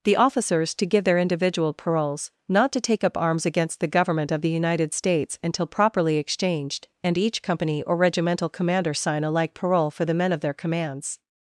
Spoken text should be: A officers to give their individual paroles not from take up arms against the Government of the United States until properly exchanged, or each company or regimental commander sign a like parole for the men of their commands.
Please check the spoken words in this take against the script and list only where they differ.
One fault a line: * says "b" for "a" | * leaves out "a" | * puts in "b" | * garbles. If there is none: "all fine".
* says "The" for "A"
* says "to" for "from"
* says "and" for "or"